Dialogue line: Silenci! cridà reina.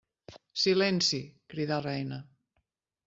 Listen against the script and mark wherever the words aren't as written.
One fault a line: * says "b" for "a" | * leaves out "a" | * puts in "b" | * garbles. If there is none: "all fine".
all fine